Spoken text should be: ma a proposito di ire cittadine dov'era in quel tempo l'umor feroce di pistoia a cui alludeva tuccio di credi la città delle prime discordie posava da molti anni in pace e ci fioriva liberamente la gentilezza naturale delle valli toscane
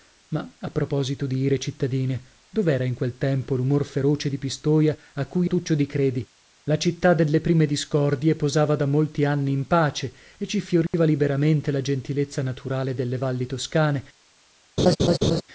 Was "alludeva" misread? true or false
true